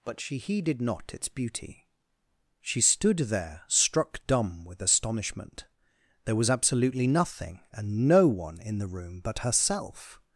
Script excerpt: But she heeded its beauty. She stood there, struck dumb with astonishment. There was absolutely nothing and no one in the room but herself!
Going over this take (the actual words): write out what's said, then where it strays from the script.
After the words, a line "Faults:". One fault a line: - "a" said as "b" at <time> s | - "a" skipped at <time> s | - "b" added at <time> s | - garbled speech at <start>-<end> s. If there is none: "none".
But she heeded not its beauty. She stood there, struck dumb with astonishment. There was absolutely nothing and no one in the room but herself!
Faults:
- "not" added at 0.8 s